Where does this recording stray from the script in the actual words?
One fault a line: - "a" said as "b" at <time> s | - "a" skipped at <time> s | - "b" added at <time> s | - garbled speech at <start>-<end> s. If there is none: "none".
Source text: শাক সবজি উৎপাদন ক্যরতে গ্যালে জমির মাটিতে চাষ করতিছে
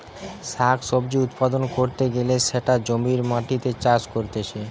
- "সেটা" added at 2.5 s